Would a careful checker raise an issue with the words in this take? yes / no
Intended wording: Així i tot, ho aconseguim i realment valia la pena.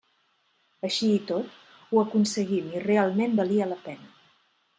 no